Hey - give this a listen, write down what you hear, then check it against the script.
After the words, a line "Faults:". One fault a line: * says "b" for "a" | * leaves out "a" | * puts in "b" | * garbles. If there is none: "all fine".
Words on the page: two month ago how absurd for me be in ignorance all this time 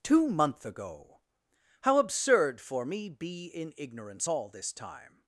two month ago how absurd for me be in ignorance all this time
Faults:
all fine